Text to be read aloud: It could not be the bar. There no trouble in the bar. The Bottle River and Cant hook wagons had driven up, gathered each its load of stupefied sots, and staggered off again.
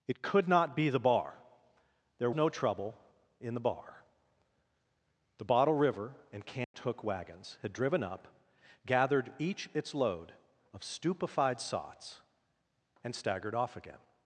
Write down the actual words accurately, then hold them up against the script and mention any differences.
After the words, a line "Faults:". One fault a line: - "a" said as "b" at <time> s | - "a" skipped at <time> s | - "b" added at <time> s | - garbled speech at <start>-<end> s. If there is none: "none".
It could not be the bar. There no trouble in the bar. The Bottle River and Cant hook wagons had driven up, gathered each its load of stupefied sots, and staggered off again.
Faults:
none